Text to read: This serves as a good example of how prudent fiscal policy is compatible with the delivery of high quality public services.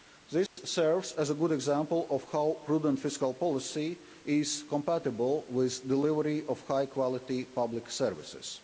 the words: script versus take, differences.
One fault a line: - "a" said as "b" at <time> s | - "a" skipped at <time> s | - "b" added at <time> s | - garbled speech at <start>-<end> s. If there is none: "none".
none